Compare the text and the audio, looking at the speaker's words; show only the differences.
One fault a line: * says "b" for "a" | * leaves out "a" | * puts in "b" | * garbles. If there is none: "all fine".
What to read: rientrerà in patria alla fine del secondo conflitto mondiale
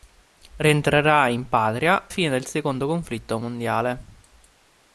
* leaves out "alla"